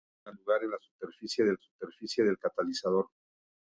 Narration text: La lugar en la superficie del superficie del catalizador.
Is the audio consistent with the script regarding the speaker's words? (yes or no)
yes